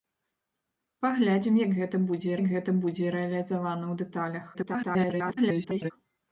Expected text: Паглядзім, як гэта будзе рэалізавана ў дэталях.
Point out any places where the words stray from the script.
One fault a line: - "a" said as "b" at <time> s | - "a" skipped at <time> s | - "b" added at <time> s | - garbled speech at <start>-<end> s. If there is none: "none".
- "як гэта будзе" added at 2.4 s
- garbled speech at 4.5-5.9 s